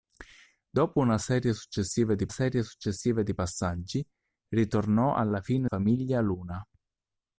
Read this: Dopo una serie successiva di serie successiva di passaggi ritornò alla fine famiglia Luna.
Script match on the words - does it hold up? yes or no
yes